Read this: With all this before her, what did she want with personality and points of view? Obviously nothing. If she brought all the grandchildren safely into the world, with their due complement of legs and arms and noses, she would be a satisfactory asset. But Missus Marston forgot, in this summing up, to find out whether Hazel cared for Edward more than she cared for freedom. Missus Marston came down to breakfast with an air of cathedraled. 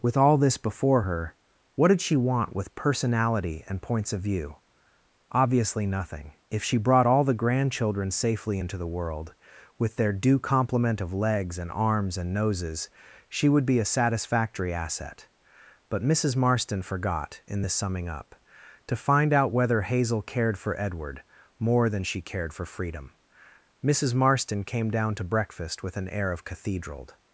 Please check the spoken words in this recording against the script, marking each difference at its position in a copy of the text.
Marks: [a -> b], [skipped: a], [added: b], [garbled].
With all this before her, what did she want with personality and points of view? Obviously nothing. If she brought all the grandchildren safely into the world, with their due complement of legs and arms and noses, she would be a satisfactory asset. But Missus Marston forgot, in this summing up, to find out whether Hazel cared for Edward more than she cared for freedom. Missus Marston came down to breakfast with an air of cathedraled.